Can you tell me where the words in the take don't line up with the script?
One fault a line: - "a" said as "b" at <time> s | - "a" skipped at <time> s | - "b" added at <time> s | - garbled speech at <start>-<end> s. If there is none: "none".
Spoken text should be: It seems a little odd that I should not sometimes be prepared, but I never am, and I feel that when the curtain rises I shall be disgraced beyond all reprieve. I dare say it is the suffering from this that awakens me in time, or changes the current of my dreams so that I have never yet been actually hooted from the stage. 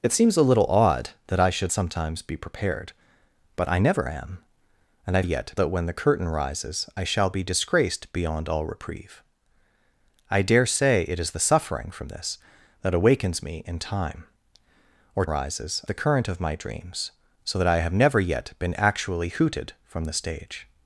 - "not" skipped at 1.7 s
- "feel" said as "yet" at 5.2 s
- "changes" said as "rises" at 15.2 s